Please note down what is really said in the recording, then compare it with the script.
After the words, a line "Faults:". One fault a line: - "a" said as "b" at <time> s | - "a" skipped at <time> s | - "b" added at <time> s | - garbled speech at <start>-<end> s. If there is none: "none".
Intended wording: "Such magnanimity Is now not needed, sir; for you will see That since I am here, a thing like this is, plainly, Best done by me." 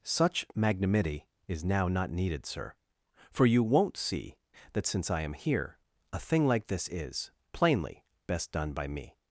"Such magnanimity Is now not needed, sir; for you won't see That since I am here, a thing like this is, plainly, Best done by me."
Faults:
- "will" said as "won't" at 3.6 s